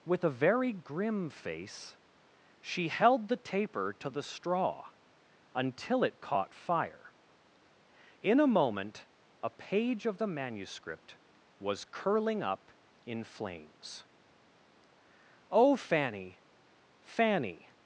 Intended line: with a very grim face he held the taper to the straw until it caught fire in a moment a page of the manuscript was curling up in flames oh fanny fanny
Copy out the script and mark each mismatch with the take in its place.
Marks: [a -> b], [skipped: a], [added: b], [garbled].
with a very grim face [he -> she] held the taper to the straw until it caught fire in a moment a page of the manuscript was curling up in flames oh fanny fanny